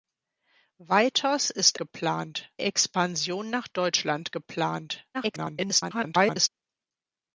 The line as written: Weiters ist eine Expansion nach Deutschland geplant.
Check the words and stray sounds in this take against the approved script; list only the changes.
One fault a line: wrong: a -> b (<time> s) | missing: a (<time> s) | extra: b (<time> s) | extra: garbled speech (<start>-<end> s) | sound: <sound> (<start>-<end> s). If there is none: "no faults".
wrong: eine -> geplant (1.8 s)
extra: garbled speech (5.1-6.5 s)